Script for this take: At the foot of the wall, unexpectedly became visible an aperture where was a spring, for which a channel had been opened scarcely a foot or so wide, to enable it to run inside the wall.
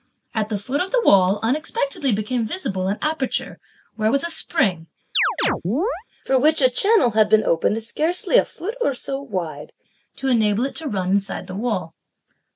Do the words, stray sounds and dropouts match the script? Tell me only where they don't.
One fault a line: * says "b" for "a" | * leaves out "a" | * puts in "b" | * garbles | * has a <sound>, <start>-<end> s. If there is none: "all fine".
* has a chirp, 5.1-6.0 s